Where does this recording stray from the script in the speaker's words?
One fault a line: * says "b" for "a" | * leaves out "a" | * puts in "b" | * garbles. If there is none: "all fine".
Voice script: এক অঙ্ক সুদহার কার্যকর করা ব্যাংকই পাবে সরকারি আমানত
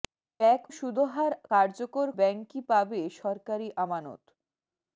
* leaves out "অঙ্ক"
* leaves out "করা"